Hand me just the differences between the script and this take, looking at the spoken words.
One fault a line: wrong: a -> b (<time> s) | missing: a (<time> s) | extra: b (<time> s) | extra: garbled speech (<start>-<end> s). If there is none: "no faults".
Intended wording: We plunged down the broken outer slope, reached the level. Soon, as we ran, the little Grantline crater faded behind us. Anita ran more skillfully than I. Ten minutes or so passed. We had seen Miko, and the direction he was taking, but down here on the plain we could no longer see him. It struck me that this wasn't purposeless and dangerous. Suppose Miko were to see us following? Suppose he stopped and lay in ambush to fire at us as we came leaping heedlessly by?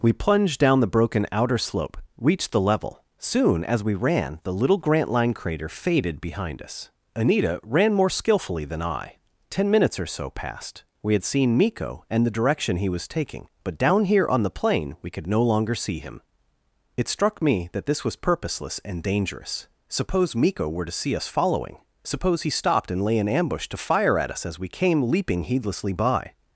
wrong: wasn't -> was (18.0 s)